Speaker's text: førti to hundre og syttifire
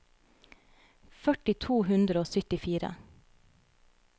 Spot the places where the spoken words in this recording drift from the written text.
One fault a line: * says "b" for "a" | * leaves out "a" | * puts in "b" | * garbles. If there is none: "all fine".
all fine